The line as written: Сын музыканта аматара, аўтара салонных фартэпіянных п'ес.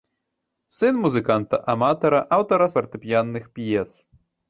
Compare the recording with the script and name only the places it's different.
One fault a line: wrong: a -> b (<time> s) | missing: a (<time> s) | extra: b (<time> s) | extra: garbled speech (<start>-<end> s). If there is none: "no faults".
missing: салонных (2.7 s)